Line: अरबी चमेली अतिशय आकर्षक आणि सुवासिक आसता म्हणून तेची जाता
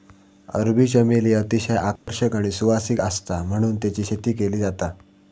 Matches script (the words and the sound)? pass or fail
fail